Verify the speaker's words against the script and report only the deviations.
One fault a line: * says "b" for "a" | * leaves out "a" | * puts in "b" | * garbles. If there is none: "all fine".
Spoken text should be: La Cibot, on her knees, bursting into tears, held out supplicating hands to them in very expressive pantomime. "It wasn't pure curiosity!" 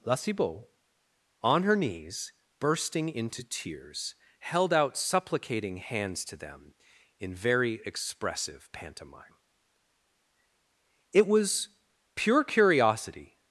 * says "was" for "wasn't"